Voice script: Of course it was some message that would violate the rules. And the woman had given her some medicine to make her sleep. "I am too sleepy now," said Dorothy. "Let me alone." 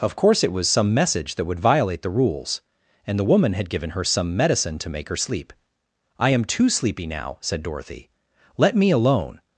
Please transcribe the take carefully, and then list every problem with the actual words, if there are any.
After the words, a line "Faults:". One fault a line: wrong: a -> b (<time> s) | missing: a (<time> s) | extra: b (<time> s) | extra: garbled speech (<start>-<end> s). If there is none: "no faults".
Of course it was some message that would violate the rules. And the woman had given her some medicine to make her sleep. "I am too sleepy now," said Dorothy. "Let me alone."
Faults:
no faults